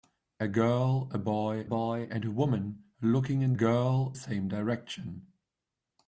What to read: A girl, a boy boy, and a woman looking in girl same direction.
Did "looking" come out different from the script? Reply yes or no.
no